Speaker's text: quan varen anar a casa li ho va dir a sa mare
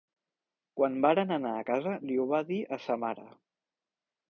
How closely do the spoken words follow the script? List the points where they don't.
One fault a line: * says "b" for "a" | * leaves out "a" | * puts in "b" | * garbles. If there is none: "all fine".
all fine